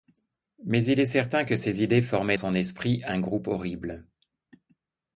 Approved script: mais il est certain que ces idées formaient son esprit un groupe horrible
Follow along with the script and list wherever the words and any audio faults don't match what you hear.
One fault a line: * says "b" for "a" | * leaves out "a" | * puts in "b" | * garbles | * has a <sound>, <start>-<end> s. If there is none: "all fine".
all fine